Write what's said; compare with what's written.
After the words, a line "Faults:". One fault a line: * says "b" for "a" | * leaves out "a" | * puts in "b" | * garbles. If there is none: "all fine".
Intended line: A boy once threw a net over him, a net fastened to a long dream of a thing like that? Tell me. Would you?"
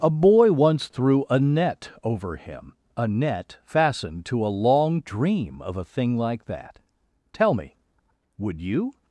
A boy once threw a net over him, a net fastened to a long dream of a thing like that? Tell me. Would you?"
Faults:
all fine